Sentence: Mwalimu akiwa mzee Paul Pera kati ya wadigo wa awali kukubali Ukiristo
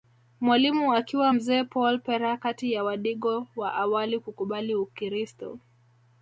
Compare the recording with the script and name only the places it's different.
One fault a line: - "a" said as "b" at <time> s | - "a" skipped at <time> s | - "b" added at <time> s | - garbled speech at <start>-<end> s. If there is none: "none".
none